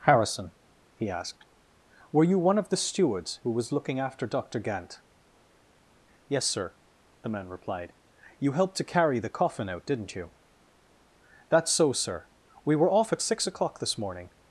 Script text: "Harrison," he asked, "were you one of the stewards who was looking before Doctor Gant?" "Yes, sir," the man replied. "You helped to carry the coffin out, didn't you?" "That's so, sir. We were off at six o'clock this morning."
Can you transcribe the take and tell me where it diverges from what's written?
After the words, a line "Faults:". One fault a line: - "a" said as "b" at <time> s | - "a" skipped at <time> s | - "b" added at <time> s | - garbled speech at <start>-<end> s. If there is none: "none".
"Harrison," he asked, "were you one of the stewards who was looking after Doctor Gant?" "Yes, sir," the man replied. "You helped to carry the coffin out, didn't you?" "That's so, sir. We were off at six o'clock this morning."
Faults:
- "before" said as "after" at 4.0 s